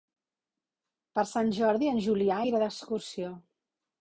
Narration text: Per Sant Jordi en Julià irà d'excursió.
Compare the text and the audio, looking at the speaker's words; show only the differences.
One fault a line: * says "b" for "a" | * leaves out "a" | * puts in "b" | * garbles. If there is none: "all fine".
all fine